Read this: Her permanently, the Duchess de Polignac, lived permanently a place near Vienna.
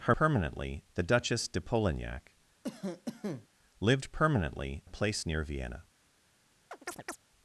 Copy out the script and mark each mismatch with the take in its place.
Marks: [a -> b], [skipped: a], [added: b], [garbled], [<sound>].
Her permanently, the Duchess de Polignac, [cough] lived permanently a place near Vienna. [chirp]